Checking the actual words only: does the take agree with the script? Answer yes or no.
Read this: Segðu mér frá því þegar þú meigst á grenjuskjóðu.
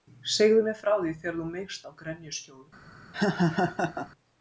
yes